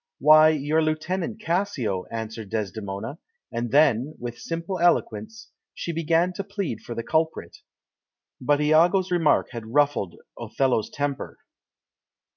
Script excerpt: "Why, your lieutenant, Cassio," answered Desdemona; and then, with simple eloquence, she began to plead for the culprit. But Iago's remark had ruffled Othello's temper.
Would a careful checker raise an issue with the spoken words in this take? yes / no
no